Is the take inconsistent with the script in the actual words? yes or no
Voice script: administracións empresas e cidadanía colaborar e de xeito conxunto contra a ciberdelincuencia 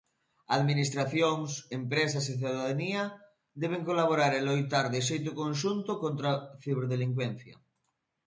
yes